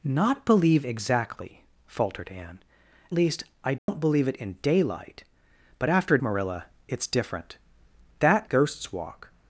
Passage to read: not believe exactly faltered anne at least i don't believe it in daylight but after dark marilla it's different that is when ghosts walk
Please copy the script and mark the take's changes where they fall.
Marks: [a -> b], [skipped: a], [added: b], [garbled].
not believe exactly faltered anne [skipped: at] least i don't believe it in daylight but after [skipped: dark] marilla it's different that [skipped: is when] ghosts walk